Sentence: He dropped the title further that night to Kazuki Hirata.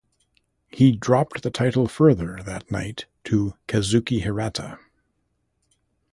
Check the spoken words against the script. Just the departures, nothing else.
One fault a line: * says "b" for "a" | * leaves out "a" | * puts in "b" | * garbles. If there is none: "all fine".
all fine